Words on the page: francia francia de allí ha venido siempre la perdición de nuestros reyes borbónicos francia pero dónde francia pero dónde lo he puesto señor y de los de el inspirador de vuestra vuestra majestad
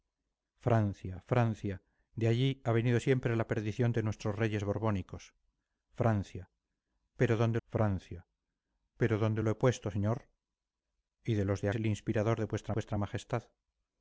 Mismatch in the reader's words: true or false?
false